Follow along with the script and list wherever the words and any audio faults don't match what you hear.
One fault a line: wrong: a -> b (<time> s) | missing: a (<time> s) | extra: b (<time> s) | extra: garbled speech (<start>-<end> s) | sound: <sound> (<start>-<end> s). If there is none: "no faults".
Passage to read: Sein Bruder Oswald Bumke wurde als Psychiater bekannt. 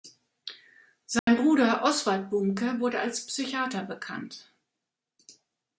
sound: dropout (1.2-1.3 s)